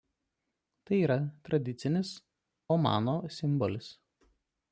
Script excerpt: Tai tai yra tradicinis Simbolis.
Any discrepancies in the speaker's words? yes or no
yes